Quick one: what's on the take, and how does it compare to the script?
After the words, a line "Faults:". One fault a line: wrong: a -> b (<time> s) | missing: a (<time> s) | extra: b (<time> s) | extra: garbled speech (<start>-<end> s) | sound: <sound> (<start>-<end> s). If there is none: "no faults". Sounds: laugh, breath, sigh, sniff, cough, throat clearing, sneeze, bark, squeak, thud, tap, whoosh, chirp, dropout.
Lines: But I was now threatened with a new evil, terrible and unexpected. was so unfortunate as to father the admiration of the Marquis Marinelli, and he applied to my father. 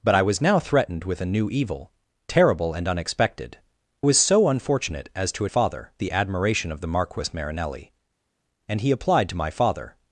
But I was now threatened with a new evil, terrible and unexpected. was so unfortunate as to father the admiration of the Marquis Marinelli, and he applied to my father.
Faults:
no faults